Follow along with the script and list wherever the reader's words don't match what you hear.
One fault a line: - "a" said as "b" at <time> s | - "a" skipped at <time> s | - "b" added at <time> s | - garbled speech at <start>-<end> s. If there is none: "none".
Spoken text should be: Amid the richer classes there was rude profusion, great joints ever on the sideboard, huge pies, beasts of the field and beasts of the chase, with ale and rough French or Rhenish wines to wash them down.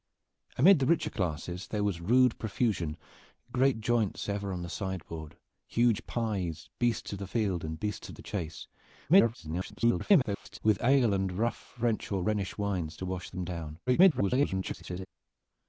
- garbled speech at 9.1-10.6 s
- garbled speech at 13.9-15.1 s